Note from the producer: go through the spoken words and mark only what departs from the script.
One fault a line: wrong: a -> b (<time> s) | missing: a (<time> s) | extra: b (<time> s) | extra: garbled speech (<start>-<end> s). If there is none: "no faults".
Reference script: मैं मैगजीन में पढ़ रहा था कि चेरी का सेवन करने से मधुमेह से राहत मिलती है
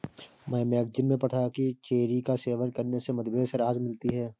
missing: रहा (1.3 s)